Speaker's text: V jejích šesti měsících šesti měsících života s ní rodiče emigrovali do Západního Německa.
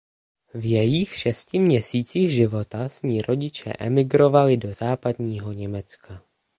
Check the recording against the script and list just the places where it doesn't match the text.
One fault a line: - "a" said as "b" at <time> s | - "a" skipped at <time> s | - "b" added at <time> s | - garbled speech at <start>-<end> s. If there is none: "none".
- "šesti měsících" skipped at 2.3 s